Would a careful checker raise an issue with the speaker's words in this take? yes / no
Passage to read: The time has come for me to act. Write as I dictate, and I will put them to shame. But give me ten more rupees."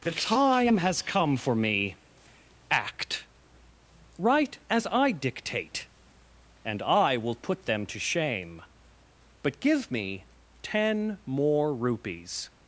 yes